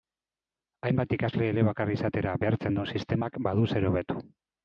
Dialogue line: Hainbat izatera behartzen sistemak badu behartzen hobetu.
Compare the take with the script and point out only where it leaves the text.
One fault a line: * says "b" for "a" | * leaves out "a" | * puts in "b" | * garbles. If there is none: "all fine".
* puts in "ikasle elebakar"
* puts in "duen"
* says "zer" for "behartzen"